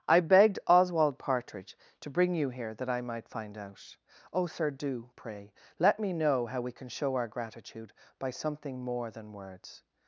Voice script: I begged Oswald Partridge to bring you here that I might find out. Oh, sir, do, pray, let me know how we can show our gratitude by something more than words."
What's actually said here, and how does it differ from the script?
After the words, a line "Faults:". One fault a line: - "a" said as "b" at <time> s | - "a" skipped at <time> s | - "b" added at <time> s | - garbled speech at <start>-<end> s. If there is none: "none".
I begged Oswald Partridge to bring you here that I might find out. Oh, sir, do, pray, let me know how we can show our gratitude by something more than words."
Faults:
none